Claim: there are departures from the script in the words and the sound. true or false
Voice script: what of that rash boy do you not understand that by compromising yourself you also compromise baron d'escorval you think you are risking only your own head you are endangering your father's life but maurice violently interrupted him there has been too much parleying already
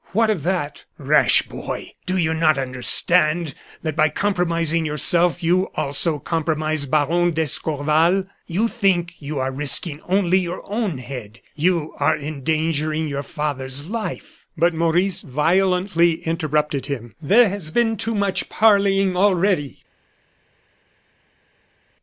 false